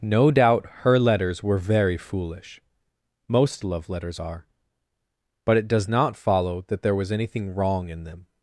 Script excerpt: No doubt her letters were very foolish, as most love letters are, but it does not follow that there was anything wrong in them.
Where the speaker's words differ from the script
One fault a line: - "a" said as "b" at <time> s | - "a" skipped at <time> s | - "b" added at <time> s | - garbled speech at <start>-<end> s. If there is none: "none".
- "as" skipped at 2.6 s